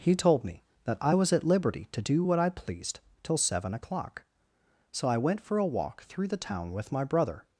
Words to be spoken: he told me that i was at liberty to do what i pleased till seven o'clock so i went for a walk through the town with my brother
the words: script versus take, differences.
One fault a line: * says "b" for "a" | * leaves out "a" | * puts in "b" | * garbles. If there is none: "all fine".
all fine